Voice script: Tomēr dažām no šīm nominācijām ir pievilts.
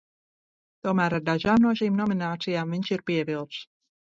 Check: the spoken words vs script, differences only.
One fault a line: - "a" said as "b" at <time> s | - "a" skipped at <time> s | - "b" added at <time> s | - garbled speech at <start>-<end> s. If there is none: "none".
- "ar" added at 1.2 s
- "viņš" added at 2.8 s